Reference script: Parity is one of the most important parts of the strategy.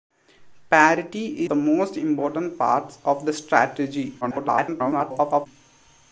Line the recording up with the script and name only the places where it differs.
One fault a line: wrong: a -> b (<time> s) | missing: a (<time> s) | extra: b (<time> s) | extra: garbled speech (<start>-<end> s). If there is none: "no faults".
missing: is one of (1.4 s)
extra: garbled speech (4.2-5.5 s)